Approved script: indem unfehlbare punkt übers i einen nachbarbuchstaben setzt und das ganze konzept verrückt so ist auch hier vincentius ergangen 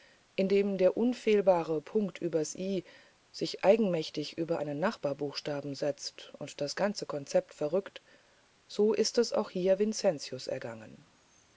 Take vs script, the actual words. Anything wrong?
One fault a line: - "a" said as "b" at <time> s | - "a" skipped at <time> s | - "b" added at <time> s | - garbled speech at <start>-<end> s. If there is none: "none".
- "der" added at 0.8 s
- "sich eigenmächtig über" added at 3.3 s
- "es" added at 9.2 s